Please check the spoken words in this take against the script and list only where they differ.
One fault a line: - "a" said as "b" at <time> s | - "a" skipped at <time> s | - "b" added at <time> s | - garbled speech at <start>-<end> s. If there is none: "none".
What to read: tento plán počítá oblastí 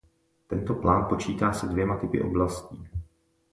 - "se dvěma typy" added at 1.5 s